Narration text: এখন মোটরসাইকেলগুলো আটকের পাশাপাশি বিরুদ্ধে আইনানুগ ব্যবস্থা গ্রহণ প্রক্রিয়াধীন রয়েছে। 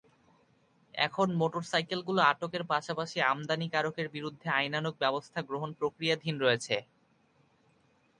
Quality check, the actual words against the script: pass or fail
fail